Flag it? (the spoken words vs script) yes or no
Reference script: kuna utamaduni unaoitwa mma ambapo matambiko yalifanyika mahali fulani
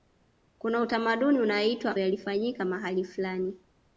yes